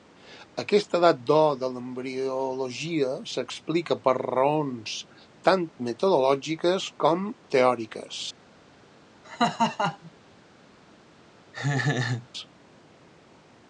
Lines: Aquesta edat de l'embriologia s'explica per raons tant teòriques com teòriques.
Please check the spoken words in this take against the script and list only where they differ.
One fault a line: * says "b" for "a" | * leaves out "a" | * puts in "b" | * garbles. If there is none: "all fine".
* puts in "d'or"
* says "metodològiques" for "teòriques"